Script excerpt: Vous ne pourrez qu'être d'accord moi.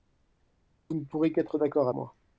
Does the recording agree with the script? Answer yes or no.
yes